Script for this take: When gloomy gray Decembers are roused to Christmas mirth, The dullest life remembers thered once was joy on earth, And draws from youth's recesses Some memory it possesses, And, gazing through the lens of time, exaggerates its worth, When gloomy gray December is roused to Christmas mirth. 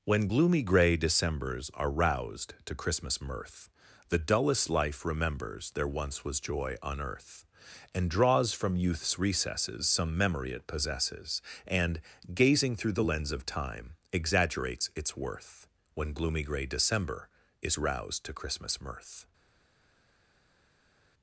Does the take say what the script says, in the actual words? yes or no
no